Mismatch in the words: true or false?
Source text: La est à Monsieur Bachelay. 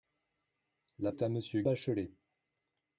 false